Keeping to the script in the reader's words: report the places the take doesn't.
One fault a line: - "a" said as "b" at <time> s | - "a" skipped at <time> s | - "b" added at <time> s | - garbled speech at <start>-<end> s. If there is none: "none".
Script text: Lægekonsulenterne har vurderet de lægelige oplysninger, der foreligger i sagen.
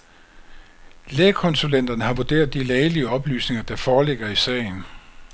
none